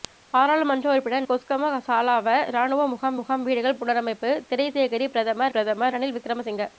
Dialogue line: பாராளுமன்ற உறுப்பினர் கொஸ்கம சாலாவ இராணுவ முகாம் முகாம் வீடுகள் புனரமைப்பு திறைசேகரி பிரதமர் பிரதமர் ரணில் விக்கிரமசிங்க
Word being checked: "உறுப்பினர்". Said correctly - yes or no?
yes